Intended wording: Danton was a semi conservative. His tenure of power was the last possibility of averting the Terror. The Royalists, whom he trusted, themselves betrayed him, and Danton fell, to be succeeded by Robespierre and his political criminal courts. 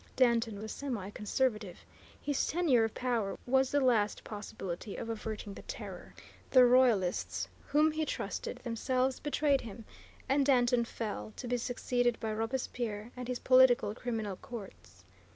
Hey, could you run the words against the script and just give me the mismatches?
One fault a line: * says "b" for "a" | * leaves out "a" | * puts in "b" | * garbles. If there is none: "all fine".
* leaves out "was"